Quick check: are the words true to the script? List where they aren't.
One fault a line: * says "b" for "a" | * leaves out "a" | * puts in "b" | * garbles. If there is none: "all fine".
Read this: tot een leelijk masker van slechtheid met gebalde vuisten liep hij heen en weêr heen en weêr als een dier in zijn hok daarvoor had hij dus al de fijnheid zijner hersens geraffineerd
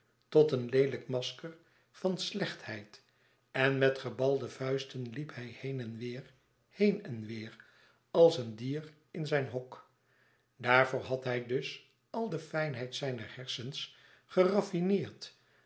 * puts in "en"